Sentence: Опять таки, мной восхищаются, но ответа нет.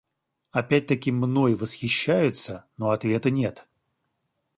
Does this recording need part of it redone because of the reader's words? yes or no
no